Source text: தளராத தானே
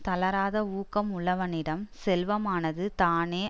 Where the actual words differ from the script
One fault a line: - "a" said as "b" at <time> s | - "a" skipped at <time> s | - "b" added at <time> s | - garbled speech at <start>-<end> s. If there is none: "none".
- "ஊக்கம் உள்ளவனிடம் செல்வமானது" added at 0.7 s